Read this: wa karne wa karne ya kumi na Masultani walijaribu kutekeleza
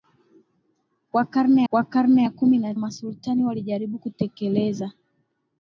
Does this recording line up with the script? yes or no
yes